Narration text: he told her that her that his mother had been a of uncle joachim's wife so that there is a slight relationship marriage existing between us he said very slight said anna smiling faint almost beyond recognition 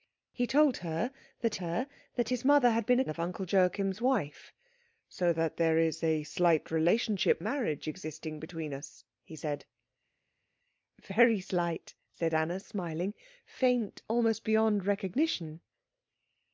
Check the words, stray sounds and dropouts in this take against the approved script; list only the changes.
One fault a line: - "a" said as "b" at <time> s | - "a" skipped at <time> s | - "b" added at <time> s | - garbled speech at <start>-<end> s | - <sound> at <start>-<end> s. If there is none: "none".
none